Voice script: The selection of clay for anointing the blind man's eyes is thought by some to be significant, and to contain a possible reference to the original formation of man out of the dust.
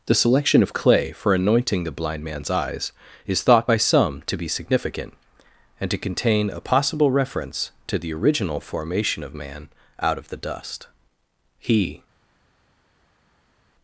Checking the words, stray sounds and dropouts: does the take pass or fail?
fail